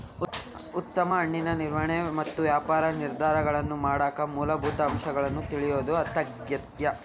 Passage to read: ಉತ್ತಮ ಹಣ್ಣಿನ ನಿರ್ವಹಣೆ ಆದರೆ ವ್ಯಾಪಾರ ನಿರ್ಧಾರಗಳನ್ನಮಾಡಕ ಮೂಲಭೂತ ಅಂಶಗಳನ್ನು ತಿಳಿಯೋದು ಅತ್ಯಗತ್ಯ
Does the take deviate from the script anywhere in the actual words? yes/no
yes